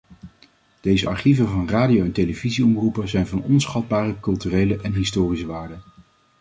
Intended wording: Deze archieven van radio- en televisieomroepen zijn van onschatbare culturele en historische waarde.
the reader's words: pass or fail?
pass